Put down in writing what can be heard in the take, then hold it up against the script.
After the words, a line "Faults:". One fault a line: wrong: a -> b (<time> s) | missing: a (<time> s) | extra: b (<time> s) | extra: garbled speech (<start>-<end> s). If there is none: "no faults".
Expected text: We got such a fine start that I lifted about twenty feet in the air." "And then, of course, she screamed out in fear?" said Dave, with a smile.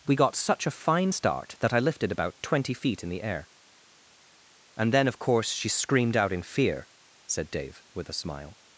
We got such a fine start that I lifted about twenty feet in the air." "And then, of course, she screamed out in fear?" said Dave, with a smile.
Faults:
no faults